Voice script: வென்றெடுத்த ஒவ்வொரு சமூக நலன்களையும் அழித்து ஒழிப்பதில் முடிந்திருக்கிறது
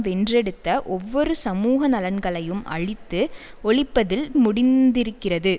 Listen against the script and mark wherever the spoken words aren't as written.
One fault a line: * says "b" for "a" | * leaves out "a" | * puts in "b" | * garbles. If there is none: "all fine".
all fine